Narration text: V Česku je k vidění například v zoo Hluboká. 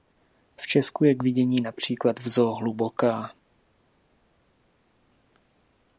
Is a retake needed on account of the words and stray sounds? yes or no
no